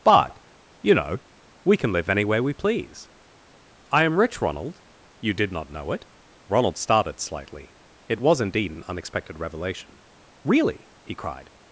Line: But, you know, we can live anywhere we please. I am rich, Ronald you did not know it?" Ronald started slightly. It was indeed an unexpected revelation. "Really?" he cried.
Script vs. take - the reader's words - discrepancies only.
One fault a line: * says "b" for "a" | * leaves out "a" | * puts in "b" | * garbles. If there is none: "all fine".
all fine